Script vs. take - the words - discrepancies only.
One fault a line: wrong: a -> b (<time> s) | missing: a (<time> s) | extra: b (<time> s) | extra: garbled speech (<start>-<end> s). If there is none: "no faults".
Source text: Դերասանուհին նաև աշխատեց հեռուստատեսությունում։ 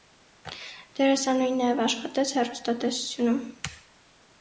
no faults